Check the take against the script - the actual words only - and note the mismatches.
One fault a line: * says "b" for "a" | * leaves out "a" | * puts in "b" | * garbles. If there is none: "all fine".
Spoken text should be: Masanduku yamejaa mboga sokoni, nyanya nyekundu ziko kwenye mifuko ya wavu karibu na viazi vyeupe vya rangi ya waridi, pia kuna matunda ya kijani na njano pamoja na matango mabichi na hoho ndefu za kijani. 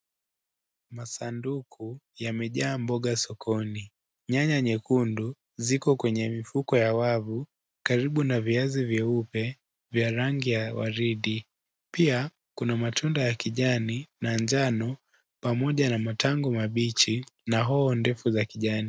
all fine